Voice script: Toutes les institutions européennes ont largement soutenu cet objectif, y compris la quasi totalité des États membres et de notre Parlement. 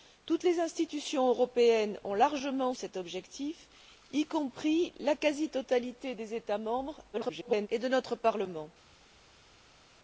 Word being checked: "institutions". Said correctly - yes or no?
yes